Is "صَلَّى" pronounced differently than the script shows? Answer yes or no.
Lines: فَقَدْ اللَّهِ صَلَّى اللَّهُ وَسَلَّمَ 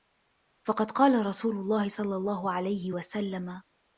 no